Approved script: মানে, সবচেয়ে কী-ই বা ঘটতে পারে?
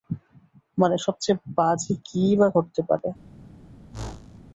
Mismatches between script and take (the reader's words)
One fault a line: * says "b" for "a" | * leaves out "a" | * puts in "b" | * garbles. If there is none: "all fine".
* puts in "বাজে"